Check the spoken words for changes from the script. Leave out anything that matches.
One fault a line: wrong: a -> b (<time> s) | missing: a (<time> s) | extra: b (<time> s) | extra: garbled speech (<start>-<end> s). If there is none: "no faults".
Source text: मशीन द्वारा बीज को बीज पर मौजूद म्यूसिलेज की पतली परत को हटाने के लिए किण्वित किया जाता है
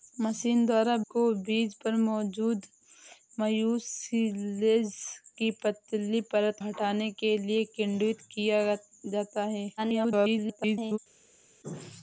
missing: बीज (0.9 s)
missing: को (6.6 s)
extra: garbled speech (9.8-11.0 s)